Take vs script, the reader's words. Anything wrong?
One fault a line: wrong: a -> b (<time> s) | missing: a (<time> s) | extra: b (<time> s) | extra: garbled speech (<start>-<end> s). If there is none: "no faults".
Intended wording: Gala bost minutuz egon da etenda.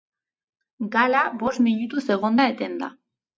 no faults